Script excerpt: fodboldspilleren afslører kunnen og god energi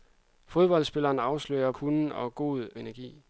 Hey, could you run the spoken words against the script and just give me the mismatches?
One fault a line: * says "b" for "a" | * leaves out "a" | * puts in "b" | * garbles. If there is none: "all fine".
all fine